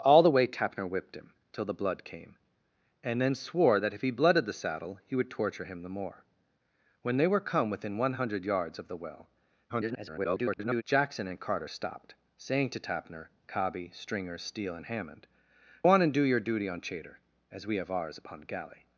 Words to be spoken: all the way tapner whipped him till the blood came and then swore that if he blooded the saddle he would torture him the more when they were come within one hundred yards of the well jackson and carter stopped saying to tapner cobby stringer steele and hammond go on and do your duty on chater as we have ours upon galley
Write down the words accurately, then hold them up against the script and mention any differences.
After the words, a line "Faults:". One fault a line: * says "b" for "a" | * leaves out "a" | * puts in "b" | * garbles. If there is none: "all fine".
all the way tapner whipped him till the blood came and then swore that if he blooded the saddle he would torture him the more when they were come within one hundred yards of the well [garbled] jackson and carter stopped saying to tapner cobby stringer steele and hammond on and do your duty on chater as we have ours upon galley
Faults:
* garbles
* leaves out "go"